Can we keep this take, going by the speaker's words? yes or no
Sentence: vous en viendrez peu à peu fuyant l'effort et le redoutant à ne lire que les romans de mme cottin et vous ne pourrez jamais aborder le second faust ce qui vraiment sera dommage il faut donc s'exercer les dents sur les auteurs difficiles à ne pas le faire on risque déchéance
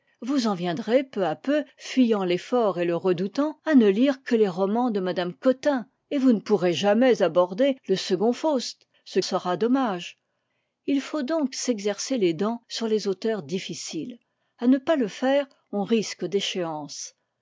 no